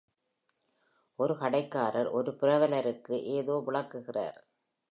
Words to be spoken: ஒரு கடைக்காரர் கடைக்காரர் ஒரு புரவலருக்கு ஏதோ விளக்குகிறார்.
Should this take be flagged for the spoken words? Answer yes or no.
yes